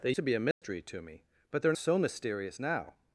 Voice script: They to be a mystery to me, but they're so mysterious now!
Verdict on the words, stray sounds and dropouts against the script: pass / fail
fail